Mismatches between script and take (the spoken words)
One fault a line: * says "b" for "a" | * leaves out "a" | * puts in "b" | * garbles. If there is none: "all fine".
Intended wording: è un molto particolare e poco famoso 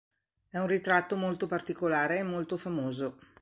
* puts in "ritratto"
* says "molto" for "poco"